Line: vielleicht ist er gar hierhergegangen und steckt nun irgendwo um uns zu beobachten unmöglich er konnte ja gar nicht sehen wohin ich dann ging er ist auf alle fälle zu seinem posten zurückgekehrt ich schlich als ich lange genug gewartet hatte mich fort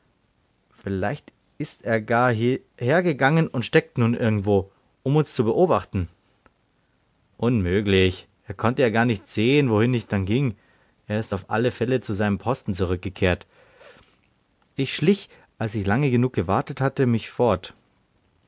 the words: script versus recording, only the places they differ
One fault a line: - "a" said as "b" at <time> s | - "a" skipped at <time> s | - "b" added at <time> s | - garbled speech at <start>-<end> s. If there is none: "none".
none